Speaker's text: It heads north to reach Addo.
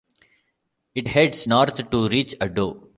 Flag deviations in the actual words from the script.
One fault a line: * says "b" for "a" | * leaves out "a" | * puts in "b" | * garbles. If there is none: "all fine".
all fine